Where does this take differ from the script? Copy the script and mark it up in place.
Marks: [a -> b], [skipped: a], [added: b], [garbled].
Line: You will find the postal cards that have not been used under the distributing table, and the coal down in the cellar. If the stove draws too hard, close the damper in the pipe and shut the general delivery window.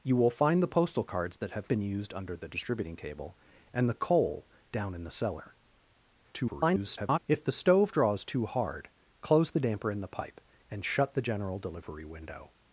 You will find the postal cards that have [skipped: not] been used under the distributing table, and the coal down in the cellar. [garbled] If the stove draws too hard, close the damper in the pipe and shut the general delivery window.